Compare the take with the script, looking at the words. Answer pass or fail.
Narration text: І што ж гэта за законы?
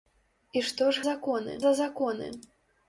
fail